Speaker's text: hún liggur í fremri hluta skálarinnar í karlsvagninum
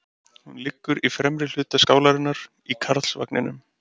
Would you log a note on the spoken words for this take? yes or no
no